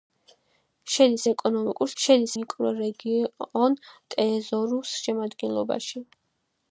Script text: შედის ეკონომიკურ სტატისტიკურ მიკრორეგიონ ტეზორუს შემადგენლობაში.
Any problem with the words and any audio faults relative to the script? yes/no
yes